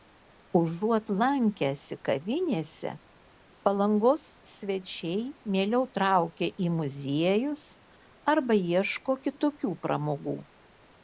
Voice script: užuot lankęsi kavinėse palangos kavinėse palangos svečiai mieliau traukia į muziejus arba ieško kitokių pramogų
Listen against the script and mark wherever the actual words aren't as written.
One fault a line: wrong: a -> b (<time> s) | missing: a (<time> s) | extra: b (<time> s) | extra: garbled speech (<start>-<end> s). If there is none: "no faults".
missing: kavinėse palangos (4.2 s)